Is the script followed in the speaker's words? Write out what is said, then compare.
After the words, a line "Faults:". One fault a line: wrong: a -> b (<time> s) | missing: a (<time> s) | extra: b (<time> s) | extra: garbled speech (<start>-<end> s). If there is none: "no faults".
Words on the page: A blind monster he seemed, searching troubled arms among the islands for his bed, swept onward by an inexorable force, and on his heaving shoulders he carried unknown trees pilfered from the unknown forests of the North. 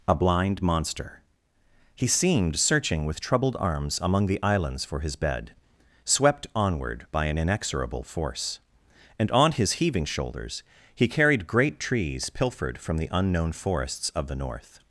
A blind monster he seemed, searching with troubled arms among the islands for his bed, swept onward by an inexorable force, and on his heaving shoulders he carried great trees pilfered from the unknown forests of the North.
Faults:
extra: with (3.0 s)
wrong: unknown -> great (11.4 s)